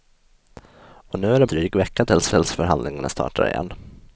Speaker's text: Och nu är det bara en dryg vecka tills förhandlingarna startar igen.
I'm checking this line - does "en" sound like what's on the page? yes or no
no